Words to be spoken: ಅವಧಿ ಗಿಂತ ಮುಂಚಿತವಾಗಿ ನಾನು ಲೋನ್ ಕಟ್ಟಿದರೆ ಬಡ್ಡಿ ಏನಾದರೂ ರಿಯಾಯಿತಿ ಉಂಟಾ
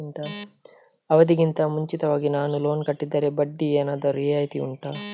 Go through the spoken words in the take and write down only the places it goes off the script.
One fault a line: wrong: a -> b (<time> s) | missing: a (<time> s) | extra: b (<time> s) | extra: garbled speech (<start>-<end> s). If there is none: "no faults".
no faults